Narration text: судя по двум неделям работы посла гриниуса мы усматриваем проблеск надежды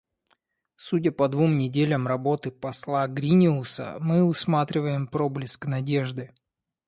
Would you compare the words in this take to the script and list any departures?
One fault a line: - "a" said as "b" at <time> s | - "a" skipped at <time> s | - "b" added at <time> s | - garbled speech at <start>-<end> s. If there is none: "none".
none